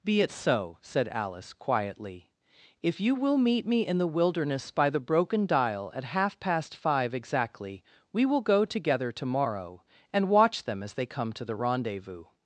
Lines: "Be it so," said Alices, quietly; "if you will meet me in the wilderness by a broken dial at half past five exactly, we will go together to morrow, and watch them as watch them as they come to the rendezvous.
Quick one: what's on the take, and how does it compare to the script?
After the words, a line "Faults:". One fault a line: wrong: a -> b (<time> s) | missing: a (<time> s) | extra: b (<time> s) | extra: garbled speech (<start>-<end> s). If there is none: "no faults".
"Be it so," said Alice, quietly; "if you will meet me in the wilderness by the broken dial at half past five exactly, we will go together to morrow, and watch them as they come to the rendezvous.
Faults:
wrong: Alices -> Alice (1.1 s)
wrong: a -> the (4.9 s)
missing: watch them as (10.9 s)